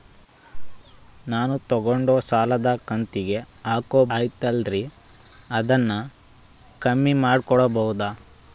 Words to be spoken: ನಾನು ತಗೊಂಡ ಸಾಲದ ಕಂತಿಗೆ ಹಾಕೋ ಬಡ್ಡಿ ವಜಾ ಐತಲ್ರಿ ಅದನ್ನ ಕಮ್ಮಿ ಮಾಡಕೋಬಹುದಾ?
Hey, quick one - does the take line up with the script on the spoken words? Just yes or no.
no